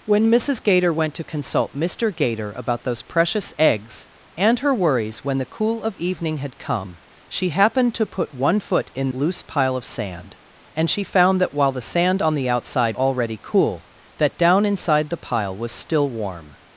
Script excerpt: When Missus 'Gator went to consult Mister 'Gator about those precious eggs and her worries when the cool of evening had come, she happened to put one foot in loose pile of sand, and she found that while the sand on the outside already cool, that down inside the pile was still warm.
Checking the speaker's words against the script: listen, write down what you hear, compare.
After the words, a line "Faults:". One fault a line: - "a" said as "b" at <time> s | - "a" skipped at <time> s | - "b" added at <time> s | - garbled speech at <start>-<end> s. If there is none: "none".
When Missus 'Gator went to consult Mister 'Gator about those precious eggs and her worries when the cool of evening had come, she happened to put one foot in loose pile of sand, and she found that while the sand on the outside already cool, that down inside the pile was still warm.
Faults:
none